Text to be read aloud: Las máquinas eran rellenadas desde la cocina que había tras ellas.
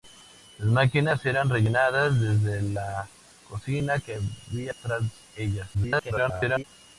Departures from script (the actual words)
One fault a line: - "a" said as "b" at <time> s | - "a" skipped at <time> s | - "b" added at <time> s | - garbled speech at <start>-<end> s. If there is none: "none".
- garbled speech at 5.7-6.6 s